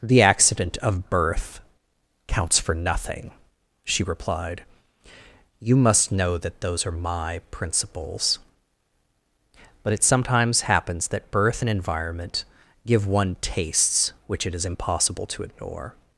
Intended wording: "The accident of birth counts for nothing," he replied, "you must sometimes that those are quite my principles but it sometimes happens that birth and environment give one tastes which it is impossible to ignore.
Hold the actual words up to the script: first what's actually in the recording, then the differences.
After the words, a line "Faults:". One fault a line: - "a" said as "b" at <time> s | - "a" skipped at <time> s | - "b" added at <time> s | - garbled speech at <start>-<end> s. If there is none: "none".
"The accident of birth counts for nothing," she replied, "you must know that those are my principles but it sometimes happens that birth and environment give one tastes which it is impossible to ignore.
Faults:
- "he" said as "she" at 3.9 s
- "sometimes" said as "know" at 6.1 s
- "quite" skipped at 6.9 s